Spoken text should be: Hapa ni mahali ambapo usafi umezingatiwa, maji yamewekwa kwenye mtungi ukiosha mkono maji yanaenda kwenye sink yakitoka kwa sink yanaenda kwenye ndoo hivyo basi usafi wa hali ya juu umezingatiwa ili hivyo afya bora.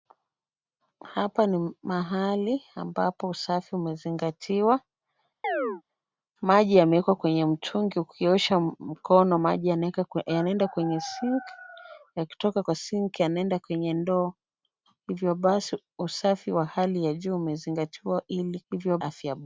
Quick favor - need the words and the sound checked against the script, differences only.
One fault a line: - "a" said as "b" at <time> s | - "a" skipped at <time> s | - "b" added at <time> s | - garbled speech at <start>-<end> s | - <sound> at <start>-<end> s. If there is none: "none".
- chirp at 5.4-5.8 s